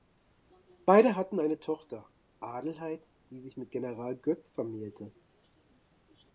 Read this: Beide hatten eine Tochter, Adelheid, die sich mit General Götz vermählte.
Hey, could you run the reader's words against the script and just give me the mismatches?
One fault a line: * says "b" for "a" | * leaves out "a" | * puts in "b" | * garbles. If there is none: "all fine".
all fine